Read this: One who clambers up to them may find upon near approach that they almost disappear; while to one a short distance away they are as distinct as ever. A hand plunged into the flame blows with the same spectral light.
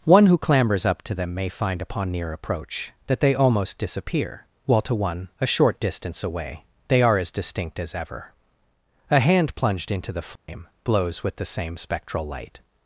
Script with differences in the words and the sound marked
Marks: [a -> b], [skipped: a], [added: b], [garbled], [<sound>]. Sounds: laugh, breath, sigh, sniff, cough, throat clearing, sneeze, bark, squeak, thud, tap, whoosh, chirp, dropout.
One who clambers up to them may find upon near approach that they almost disappear; while to one a short distance away they are as distinct as ever. A hand plunged into the flame [dropout] blows with the same spectral light.